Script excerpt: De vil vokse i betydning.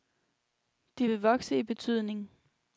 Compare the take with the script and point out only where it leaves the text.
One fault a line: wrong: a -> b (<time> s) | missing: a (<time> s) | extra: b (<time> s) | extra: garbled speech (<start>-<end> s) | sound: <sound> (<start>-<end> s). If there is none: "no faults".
no faults